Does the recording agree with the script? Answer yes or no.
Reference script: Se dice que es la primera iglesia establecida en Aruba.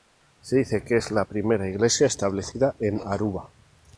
yes